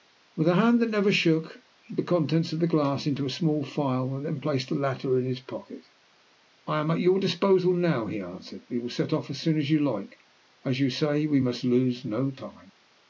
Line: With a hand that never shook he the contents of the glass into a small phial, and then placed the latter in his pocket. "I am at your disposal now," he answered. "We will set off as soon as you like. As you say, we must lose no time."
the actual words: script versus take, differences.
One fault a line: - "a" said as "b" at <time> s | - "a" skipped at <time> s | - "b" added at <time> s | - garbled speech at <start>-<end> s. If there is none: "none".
none